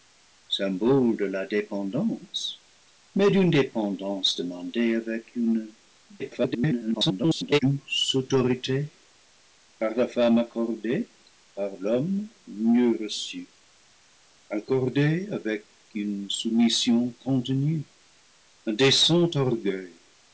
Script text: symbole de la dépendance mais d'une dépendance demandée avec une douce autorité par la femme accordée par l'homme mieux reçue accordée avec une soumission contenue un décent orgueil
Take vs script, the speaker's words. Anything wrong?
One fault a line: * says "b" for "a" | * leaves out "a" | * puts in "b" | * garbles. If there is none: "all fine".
* garbles